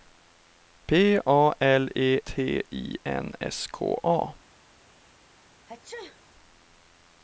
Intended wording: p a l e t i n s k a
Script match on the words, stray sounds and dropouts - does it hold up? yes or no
no